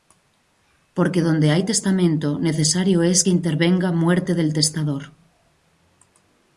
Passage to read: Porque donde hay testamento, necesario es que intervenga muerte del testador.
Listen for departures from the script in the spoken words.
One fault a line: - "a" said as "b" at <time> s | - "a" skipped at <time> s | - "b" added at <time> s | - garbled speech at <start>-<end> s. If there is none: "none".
none